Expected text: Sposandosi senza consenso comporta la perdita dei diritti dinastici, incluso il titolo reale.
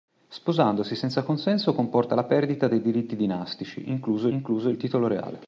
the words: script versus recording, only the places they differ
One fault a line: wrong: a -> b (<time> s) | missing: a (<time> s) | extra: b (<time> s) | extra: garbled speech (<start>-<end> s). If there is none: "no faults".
extra: incluso (4.3 s)